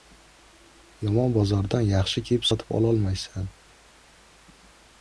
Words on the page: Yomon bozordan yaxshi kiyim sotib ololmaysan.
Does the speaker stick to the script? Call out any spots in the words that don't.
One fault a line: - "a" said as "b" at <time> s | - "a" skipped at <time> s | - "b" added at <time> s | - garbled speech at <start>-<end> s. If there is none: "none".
none